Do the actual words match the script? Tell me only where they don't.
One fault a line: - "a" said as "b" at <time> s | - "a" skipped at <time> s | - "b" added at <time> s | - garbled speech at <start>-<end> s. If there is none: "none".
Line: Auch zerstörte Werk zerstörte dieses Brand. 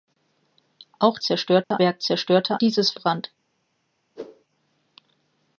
none